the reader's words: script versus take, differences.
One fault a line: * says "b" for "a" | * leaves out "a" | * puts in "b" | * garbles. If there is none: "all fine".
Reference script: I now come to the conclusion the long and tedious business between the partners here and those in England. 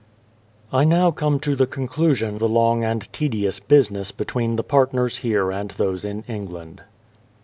all fine